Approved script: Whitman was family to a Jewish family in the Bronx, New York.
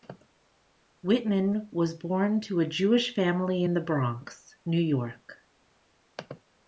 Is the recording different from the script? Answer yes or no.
yes